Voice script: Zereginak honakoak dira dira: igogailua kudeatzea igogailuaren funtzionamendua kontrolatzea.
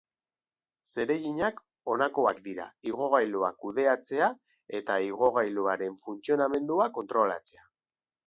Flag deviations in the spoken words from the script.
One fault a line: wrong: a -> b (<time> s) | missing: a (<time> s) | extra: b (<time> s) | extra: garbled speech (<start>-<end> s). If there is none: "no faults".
missing: dira (2.6 s)
extra: eta (4.8 s)